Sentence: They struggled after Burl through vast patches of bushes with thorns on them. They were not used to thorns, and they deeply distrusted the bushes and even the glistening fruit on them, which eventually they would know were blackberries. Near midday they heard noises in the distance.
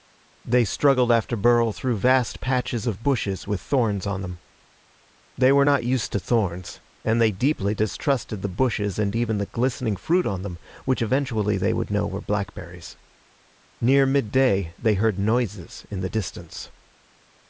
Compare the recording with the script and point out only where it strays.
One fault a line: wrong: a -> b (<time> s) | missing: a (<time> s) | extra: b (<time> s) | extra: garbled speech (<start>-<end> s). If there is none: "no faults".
no faults